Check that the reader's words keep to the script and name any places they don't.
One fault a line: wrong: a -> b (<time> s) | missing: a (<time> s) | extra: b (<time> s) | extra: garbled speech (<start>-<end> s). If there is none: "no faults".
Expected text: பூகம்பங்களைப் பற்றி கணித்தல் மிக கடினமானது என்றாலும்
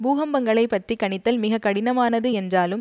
no faults